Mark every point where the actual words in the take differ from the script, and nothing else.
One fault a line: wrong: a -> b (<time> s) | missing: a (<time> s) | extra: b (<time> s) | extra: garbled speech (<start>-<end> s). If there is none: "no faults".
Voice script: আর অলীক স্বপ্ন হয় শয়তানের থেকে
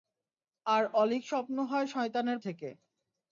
no faults